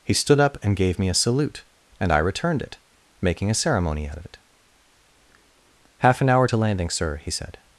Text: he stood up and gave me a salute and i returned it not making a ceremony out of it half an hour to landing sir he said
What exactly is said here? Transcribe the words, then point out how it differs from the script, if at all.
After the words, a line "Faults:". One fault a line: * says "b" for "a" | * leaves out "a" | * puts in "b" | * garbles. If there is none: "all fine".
he stood up and gave me a salute and i returned it making a ceremony out of it half an hour to landing sir he said
Faults:
* leaves out "not"